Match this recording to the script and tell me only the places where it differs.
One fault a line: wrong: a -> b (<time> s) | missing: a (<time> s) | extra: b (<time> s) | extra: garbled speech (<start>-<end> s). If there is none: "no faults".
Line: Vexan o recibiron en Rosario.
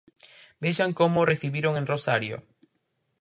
extra: como (1.0 s)